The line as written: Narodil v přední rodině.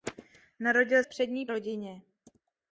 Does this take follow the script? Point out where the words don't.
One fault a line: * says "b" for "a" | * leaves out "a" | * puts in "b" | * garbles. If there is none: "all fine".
all fine